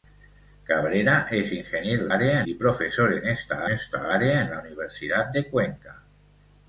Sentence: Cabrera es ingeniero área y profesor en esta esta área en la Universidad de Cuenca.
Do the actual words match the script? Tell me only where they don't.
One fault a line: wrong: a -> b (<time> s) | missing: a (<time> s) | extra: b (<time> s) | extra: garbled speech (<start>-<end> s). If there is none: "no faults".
no faults